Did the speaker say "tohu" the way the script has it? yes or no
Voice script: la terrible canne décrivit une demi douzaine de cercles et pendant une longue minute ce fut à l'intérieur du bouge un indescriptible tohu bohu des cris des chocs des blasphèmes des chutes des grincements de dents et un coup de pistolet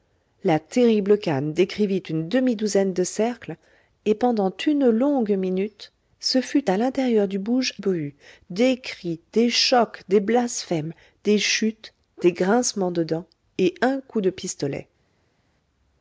no